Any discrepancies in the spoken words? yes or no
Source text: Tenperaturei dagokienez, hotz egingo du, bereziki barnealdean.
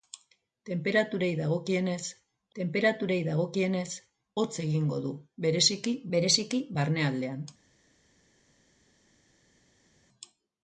yes